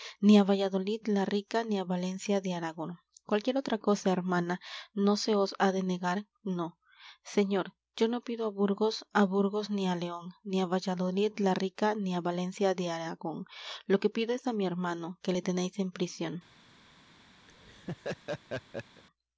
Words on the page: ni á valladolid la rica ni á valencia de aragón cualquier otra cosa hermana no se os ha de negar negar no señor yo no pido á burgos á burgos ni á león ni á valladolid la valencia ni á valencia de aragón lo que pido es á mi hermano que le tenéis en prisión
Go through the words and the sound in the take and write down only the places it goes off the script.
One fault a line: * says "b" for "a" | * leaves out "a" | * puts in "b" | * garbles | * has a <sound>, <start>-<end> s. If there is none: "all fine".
* leaves out "negar"
* says "rica" for "valencia"
* has a laugh, 17.5-19.0 s